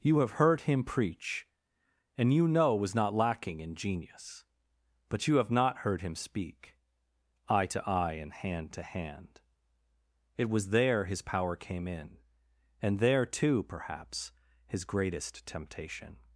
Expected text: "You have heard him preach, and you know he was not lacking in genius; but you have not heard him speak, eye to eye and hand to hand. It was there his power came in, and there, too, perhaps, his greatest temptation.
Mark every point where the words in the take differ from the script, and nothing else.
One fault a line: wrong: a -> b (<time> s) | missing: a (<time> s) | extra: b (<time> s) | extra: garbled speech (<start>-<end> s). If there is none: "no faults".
missing: he (2.8 s)